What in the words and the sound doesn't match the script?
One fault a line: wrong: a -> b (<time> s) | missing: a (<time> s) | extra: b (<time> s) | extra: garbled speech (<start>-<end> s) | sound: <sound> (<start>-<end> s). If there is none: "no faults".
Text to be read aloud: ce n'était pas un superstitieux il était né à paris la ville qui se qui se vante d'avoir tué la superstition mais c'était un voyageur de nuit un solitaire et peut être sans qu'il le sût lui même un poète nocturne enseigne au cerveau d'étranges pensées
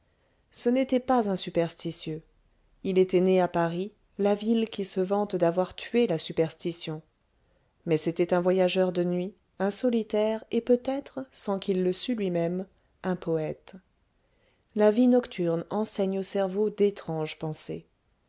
missing: qui se (5.0 s)
extra: la vie (14.8 s)